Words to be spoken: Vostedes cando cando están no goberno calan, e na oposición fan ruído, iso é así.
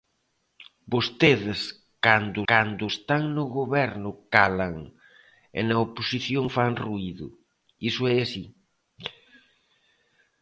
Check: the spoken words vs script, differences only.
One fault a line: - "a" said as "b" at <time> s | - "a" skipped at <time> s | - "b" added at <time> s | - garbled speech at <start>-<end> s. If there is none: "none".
none